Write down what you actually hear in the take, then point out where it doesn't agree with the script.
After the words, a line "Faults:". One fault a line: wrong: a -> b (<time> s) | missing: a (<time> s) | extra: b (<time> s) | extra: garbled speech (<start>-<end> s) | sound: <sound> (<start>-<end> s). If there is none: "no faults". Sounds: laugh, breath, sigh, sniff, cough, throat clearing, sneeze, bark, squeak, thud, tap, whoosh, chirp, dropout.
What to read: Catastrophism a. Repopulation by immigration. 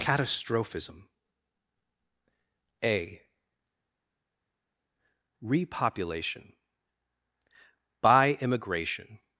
Catastrophism a. Repopulation by immigration.
Faults:
no faults